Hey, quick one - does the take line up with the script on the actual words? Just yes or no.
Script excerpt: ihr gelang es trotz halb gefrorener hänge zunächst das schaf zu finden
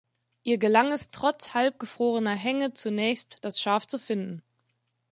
yes